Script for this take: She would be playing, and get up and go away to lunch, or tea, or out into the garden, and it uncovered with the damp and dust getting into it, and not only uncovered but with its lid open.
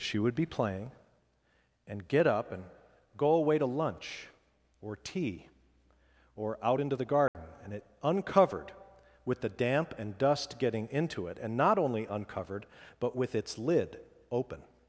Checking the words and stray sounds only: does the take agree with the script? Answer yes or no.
no